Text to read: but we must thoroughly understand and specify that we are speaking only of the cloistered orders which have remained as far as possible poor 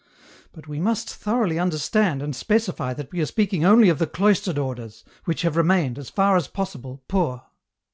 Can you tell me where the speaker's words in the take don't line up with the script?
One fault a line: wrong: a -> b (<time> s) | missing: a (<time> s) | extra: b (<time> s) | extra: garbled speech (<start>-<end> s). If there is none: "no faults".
no faults